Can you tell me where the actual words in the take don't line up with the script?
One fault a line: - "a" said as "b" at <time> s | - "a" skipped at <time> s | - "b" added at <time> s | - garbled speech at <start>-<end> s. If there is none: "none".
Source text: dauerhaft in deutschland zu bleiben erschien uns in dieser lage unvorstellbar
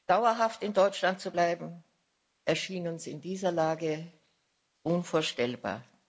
none